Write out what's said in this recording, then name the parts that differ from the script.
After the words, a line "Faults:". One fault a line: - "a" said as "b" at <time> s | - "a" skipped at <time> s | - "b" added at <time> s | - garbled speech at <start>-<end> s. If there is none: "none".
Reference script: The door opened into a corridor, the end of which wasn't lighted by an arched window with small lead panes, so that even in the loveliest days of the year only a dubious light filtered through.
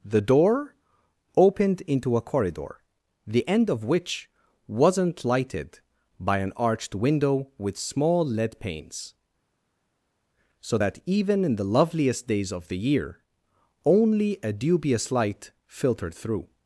The door opened into a corridor, the end of which wasn't lighted by an arched window with small lead panes, so that even in the loveliest days of the year only a dubious light filtered through.
Faults:
none